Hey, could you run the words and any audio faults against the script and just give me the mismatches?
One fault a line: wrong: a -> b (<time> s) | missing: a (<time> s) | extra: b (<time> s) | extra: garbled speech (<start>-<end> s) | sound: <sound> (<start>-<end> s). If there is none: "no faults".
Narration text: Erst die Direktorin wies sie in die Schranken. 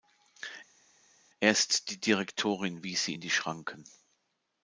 no faults